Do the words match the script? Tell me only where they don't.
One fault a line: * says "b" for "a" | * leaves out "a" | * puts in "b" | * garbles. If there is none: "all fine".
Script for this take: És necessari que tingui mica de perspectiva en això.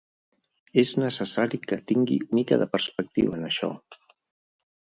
all fine